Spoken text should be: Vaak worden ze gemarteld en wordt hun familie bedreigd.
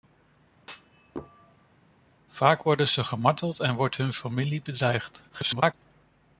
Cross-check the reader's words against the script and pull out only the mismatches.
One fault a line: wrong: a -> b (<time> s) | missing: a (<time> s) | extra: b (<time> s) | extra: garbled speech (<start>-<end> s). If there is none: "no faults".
extra: garbled speech (5.3-5.7 s)